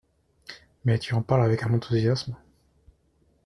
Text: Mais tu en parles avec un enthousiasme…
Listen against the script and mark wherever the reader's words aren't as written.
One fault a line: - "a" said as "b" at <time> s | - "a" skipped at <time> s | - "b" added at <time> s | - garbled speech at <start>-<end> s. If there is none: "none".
none